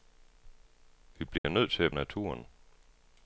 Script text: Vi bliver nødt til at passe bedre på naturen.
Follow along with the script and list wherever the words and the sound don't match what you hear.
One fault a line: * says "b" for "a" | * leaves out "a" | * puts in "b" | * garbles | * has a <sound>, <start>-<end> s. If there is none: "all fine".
* has a dropout, 1.4-1.4 s
* leaves out "passe bedre på"